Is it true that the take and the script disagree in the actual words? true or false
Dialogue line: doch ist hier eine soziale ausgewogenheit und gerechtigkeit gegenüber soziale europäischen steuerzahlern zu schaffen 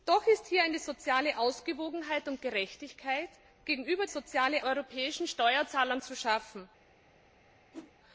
false